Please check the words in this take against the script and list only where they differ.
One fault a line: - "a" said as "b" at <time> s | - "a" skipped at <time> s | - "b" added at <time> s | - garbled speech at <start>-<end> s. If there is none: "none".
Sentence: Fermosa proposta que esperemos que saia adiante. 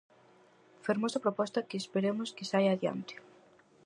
none